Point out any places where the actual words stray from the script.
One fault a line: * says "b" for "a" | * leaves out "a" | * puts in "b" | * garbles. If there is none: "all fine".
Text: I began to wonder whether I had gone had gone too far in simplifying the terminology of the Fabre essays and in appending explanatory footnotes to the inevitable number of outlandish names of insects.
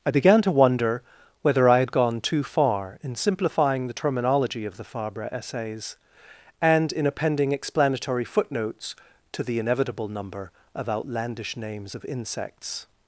* leaves out "had gone"